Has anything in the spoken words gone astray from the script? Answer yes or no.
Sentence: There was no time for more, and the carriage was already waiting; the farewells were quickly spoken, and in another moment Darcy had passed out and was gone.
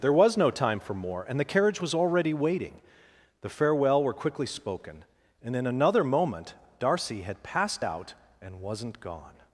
yes